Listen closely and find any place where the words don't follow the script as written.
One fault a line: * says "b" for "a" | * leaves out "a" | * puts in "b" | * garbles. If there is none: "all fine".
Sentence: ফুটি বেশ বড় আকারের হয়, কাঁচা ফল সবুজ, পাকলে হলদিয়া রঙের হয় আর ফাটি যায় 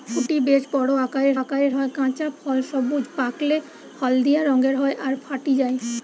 * puts in "আকারের"